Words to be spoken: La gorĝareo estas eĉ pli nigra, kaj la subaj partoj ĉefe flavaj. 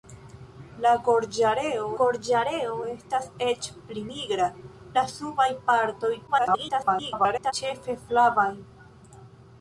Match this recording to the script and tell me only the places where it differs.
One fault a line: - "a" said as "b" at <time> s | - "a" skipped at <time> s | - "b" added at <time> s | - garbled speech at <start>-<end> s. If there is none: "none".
- "gorĝareo" added at 2.0 s
- "kaj" skipped at 4.5 s
- garbled speech at 6.3-7.5 s